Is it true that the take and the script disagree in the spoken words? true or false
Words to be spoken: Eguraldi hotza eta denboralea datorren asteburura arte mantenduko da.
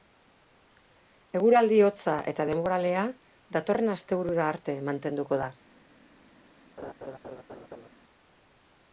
false